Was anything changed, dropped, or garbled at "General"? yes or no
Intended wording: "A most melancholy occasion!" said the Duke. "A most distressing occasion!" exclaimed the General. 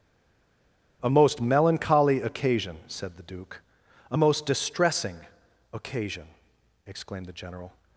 no